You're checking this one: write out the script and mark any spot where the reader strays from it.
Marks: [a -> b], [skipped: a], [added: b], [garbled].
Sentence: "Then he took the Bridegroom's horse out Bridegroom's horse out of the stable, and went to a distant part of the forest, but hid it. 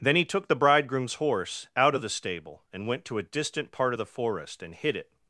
"Then he took the Bridegroom's horse out [skipped: Bridegroom's horse out] of the stable, and went to a distant part of the forest, [but -> and] hid it.